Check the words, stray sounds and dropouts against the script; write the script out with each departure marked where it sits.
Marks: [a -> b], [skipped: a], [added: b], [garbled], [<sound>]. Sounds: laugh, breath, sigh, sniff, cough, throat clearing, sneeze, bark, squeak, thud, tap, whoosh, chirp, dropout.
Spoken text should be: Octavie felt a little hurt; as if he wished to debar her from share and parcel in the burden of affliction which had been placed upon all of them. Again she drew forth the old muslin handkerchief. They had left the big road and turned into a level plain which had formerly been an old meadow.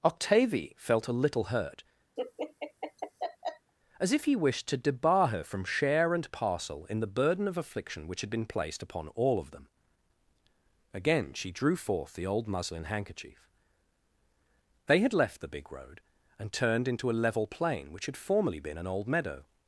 Octavie felt a little hurt; [laugh] as if he wished to debar her from share and parcel in the burden of affliction which had been placed upon all of them. Again she drew forth the old muslin handkerchief. They had left the big road and turned into a level plain which had formerly been an old meadow.